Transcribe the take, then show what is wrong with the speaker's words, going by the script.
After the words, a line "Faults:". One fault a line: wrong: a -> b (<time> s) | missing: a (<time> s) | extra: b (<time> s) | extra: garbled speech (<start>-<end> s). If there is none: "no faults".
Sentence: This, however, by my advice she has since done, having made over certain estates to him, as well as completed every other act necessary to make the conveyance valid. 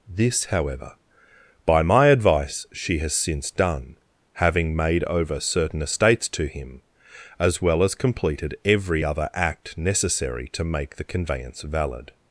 This, however, by my advice she has since done, having made over certain estates to him, as well as completed every other act necessary to make the conveyance valid.
Faults:
no faults